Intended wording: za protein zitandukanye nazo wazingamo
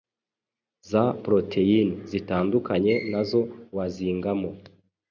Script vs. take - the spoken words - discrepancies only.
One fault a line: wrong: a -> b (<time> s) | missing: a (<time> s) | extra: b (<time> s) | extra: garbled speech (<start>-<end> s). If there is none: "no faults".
no faults